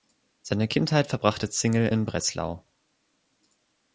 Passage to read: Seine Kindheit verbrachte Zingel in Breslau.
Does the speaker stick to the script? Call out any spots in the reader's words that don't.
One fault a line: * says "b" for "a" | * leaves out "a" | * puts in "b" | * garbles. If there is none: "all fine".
all fine